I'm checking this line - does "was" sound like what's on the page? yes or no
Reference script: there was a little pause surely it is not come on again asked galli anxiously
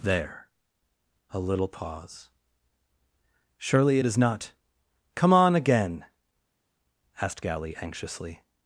no